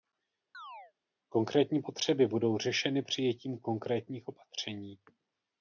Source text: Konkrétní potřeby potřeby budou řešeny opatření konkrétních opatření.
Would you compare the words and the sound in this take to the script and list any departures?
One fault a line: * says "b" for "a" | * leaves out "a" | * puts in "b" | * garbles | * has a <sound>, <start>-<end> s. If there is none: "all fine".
* has a chirp, 0.5-0.9 s
* leaves out "potřeby"
* says "přijetím" for "opatření"